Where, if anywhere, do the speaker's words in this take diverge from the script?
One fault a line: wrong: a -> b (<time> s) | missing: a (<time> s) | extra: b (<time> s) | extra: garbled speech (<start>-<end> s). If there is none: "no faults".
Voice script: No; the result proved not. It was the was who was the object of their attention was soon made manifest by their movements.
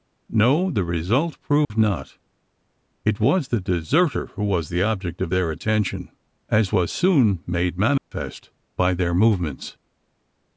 wrong: was -> deserter (3.6 s)
extra: as (6.5 s)